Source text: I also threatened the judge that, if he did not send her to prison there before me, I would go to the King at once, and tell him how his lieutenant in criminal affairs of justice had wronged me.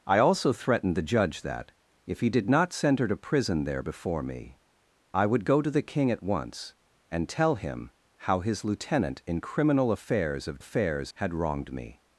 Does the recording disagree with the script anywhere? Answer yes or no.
yes